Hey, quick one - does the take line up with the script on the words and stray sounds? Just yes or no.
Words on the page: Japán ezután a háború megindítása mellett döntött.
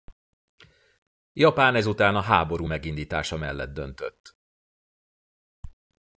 yes